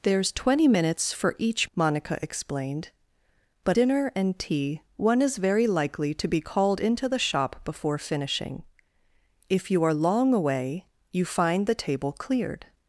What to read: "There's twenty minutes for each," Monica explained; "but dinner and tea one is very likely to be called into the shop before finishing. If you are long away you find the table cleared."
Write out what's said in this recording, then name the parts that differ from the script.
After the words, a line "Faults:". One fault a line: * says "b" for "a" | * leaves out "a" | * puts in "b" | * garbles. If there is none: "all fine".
"There's twenty minutes for each," Monica explained; "but dinner and tea one is very likely to be called into the shop before finishing. If you are long away you find the table cleared."
Faults:
all fine